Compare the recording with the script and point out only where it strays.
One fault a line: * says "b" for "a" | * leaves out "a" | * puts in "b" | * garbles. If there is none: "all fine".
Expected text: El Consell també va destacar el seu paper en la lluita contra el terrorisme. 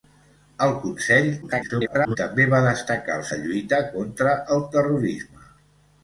* garbles
* leaves out "seu paper en"